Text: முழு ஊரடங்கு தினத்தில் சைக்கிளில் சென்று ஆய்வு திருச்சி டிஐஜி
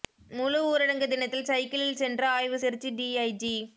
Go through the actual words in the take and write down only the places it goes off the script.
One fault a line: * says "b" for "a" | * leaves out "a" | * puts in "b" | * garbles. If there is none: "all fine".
all fine